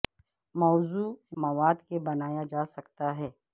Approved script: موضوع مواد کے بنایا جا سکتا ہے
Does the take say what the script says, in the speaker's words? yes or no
yes